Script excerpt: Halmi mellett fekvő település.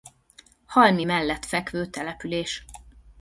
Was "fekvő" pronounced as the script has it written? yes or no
yes